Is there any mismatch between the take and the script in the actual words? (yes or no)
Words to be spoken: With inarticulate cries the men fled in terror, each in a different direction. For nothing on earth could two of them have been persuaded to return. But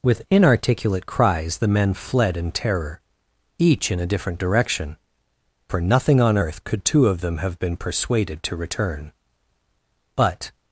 no